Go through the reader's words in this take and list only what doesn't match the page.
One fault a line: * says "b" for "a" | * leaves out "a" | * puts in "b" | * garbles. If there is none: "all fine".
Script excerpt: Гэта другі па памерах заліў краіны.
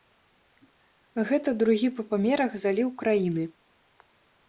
all fine